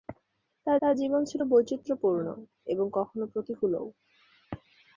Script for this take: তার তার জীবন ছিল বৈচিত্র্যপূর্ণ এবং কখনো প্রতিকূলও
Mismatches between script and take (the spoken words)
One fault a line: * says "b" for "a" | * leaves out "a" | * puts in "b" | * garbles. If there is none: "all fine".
all fine